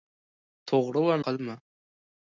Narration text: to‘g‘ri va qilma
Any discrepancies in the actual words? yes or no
no